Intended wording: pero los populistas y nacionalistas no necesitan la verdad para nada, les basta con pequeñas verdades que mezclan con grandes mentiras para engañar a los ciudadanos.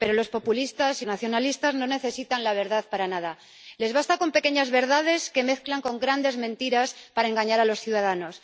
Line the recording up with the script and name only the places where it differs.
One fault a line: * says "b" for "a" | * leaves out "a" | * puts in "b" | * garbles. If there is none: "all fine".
all fine